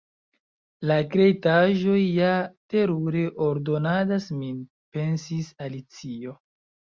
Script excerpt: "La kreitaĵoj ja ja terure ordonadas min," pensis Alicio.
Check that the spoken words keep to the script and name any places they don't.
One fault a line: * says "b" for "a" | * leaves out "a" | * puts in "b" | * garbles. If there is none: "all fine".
* leaves out "ja"